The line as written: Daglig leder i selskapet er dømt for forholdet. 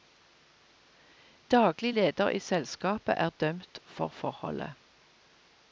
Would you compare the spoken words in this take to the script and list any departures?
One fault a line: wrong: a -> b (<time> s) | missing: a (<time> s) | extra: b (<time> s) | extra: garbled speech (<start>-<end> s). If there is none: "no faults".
no faults